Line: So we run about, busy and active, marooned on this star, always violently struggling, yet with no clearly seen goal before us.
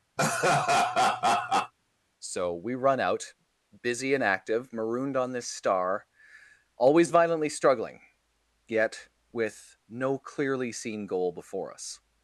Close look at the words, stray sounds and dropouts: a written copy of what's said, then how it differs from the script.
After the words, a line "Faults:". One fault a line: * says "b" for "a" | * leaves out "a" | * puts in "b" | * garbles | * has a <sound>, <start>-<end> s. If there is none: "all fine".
So we run out, busy and active, marooned on this star, always violently struggling, yet with no clearly seen goal before us.
Faults:
* has a laugh, 0.2-1.7 s
* says "out" for "about"